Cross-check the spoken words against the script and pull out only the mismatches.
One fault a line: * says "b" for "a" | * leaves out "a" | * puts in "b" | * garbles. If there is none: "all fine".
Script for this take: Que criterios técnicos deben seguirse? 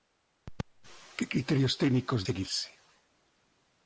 * leaves out "deben"